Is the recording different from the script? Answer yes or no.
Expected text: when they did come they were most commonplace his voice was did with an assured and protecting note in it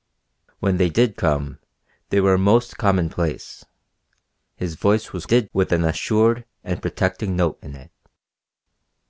no